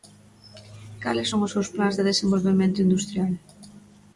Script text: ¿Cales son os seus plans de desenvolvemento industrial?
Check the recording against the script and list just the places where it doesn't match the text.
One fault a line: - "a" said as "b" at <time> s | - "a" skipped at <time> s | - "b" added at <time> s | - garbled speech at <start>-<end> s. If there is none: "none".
none